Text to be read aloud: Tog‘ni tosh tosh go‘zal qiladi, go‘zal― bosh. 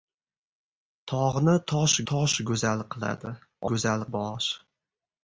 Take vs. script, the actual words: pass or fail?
pass